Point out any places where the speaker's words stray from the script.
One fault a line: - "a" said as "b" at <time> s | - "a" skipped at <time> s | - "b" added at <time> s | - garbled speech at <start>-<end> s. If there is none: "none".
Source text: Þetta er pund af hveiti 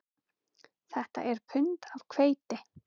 none